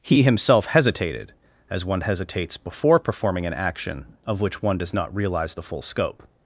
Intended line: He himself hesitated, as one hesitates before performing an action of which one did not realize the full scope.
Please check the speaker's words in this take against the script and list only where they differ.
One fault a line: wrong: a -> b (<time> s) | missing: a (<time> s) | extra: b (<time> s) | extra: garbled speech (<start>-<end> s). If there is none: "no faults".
wrong: did -> does (4.8 s)